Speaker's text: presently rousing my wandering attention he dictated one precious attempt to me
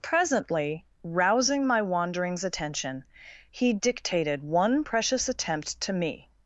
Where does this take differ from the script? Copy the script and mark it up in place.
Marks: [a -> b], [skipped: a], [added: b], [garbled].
presently rousing my [wandering -> wanderings] attention he dictated one precious attempt to me